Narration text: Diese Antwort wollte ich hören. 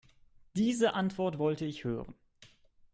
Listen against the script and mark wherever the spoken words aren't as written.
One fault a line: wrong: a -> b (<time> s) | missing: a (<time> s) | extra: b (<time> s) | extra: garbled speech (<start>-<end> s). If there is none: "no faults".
no faults